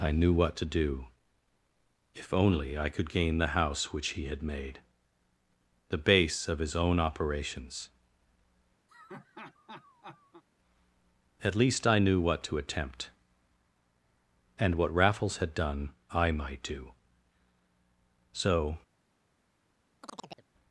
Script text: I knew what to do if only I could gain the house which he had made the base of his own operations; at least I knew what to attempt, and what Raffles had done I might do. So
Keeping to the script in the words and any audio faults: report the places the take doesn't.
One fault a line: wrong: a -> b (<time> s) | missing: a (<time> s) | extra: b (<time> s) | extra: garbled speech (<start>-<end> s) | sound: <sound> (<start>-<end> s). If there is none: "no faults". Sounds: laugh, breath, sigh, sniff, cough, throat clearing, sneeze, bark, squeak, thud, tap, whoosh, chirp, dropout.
sound: laugh (8.9-10.4 s)
sound: chirp (20.0-20.5 s)